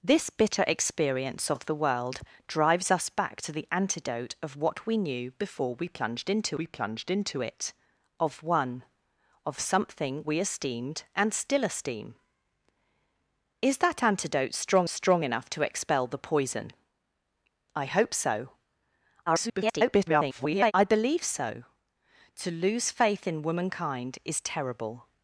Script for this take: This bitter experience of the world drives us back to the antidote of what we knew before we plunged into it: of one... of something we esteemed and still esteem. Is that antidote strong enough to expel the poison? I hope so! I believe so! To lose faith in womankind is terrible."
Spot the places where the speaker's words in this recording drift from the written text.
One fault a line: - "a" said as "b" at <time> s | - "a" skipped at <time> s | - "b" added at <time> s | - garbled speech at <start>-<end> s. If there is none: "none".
- "we plunged into" added at 6.5 s
- "strong" added at 14.9 s
- garbled speech at 19.3-20.7 s